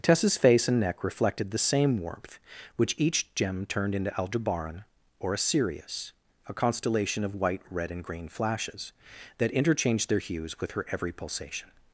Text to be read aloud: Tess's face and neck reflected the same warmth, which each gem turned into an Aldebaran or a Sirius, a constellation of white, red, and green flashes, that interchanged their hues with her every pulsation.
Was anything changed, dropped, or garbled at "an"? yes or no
yes